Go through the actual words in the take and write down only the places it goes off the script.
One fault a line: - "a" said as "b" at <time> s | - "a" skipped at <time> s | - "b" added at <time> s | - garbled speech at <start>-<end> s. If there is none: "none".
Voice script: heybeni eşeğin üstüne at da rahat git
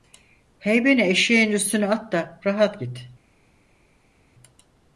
none